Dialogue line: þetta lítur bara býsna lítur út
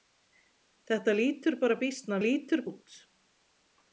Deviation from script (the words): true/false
false